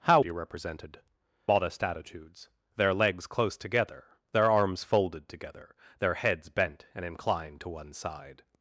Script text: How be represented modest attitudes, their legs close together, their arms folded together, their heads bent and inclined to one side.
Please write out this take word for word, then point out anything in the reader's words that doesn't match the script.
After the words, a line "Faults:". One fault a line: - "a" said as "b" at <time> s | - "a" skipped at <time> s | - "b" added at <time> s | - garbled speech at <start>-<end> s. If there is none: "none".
How be represented modest attitudes, their legs close together, their arms folded together, their heads bent and inclined to one side.
Faults:
none